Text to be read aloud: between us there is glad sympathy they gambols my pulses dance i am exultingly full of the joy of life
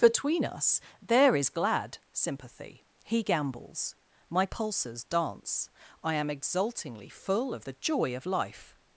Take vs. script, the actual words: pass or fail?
fail